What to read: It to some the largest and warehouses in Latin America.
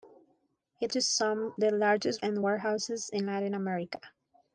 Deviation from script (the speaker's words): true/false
false